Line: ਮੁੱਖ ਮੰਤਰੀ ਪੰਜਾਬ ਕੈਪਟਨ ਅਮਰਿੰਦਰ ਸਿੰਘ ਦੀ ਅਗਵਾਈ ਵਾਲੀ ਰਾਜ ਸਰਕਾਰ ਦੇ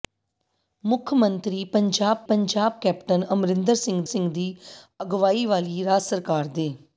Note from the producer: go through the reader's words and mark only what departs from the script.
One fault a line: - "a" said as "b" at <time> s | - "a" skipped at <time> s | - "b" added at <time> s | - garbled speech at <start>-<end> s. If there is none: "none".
- "ਪੰਜਾਬ" added at 2.3 s
- "ਸਿੰਘ" added at 4.0 s